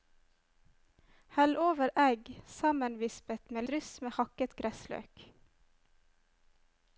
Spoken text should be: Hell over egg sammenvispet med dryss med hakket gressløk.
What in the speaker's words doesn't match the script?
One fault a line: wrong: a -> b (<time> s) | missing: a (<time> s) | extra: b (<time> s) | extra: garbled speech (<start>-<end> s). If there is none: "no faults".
no faults